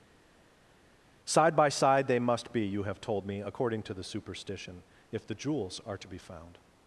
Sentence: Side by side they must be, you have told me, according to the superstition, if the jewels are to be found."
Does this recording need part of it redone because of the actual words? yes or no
no